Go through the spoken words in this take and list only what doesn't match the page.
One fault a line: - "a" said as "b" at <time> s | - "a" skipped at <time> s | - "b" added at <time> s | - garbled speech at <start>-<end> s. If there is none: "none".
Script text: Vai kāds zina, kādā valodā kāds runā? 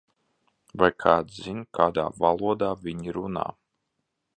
- "kāds" said as "viņi" at 2.9 s